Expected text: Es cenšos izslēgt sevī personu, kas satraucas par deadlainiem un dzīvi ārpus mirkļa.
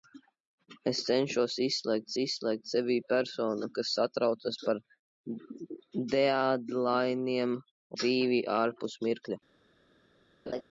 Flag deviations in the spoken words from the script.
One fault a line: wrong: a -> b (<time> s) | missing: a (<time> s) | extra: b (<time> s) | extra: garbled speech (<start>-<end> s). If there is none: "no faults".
extra: izslēgt (2.2 s)
missing: un (7.6 s)